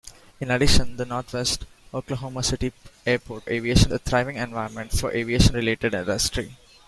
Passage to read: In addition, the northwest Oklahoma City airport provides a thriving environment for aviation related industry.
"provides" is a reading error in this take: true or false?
true